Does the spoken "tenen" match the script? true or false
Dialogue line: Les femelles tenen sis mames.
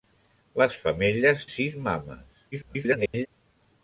false